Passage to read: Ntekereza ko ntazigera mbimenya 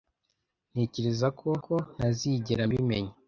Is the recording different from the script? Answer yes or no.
yes